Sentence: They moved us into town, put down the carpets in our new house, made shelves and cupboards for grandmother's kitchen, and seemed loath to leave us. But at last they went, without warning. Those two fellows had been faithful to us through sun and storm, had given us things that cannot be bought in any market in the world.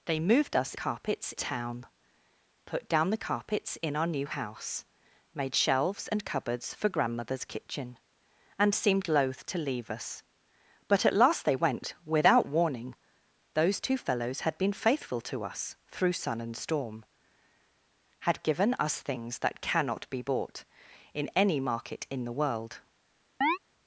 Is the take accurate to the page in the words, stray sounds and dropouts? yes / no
no